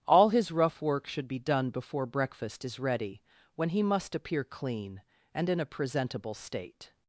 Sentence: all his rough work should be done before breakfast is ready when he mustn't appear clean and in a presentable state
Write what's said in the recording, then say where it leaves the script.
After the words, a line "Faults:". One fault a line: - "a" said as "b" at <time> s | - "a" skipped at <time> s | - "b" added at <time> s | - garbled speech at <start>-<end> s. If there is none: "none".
all his rough work should be done before breakfast is ready when he must appear clean and in a presentable state
Faults:
- "mustn't" said as "must" at 3.8 s